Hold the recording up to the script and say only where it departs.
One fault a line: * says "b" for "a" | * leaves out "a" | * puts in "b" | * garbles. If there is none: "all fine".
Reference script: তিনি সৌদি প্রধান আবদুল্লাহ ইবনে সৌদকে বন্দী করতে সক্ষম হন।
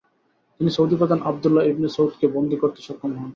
all fine